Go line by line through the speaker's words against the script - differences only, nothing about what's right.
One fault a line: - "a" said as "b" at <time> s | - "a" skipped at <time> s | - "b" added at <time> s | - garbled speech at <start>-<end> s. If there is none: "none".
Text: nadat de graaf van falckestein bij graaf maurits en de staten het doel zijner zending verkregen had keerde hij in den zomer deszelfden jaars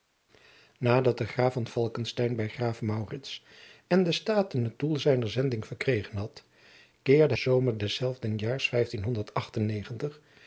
- "hij in den" skipped at 7.3 s